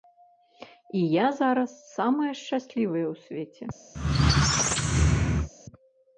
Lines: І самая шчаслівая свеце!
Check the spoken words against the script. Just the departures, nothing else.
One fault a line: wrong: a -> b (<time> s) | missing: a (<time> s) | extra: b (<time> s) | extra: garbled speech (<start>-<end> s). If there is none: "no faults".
extra: я зараз (1.1 s)
extra: ў (3.1 s)